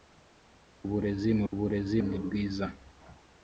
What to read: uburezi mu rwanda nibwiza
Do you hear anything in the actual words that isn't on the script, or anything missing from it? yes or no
yes